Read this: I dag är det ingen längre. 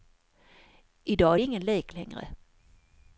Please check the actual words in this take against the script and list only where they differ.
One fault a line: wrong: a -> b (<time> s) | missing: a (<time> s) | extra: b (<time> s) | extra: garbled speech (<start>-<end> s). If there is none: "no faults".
extra: lek (1.7 s)